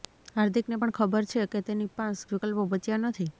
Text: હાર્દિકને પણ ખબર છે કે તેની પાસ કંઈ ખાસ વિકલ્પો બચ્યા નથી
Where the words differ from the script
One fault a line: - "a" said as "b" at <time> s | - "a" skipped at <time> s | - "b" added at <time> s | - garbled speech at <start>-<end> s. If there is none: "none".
- "કંઈ ખાસ" skipped at 2.2 s